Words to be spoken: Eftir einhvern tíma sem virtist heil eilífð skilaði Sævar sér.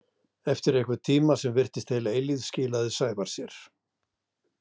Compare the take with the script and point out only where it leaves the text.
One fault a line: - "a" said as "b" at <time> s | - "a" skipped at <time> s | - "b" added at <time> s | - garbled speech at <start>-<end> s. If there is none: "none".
none